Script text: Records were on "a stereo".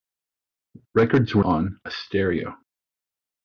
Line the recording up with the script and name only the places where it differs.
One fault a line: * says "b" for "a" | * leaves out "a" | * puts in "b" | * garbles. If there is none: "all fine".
all fine